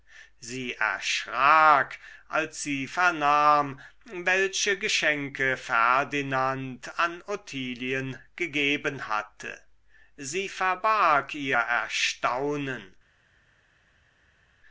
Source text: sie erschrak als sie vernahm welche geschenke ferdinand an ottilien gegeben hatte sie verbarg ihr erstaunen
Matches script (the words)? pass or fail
pass